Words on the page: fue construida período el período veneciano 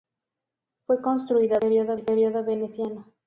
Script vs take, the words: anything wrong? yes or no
no